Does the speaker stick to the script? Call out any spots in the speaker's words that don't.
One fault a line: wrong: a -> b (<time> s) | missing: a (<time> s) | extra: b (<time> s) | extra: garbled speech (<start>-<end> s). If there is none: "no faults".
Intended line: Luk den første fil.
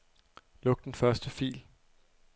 no faults